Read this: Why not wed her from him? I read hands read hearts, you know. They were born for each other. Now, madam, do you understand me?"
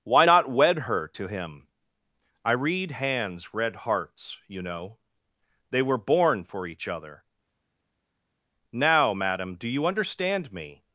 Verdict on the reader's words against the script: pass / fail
fail